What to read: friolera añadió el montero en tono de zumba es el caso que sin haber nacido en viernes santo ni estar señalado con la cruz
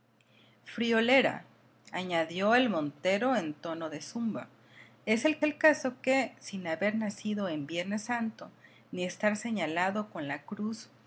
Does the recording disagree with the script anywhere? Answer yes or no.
yes